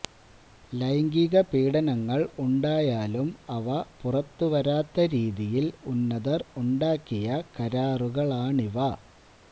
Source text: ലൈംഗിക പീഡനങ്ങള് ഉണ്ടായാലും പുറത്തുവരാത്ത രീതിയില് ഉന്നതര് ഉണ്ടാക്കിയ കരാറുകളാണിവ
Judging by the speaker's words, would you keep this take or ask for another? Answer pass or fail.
fail